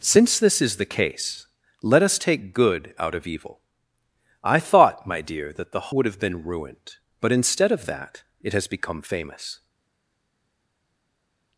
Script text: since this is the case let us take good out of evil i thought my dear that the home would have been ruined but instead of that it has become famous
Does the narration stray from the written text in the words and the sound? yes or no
yes